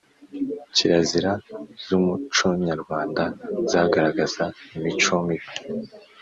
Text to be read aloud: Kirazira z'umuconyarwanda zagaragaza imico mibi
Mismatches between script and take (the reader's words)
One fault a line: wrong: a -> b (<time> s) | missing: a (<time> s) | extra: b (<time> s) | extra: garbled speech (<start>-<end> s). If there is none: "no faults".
no faults